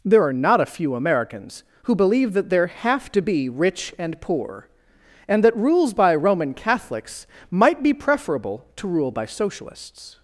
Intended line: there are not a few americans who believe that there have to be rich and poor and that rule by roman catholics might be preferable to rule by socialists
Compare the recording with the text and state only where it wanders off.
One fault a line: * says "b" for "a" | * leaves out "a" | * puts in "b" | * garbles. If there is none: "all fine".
* says "rules" for "rule"